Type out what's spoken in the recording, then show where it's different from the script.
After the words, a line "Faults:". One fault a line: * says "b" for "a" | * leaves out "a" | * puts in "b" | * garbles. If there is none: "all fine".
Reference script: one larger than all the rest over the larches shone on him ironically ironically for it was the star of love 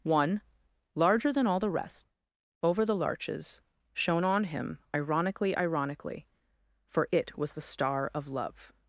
one larger than all the rest over the larches shone on him ironically ironically for it was the star of love
Faults:
all fine